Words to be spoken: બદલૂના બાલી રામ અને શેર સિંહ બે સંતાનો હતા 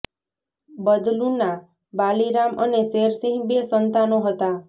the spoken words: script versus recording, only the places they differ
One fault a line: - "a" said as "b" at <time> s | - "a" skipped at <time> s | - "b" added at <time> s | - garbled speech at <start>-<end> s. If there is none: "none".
none